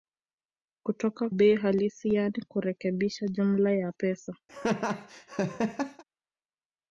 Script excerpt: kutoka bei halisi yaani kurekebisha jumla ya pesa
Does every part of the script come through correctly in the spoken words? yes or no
yes